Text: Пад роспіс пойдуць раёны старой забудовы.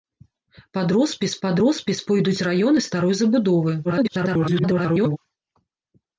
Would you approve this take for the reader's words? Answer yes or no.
no